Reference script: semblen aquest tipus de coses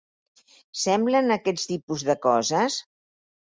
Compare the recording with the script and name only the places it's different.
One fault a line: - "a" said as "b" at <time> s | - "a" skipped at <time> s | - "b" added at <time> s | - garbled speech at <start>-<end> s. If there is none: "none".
none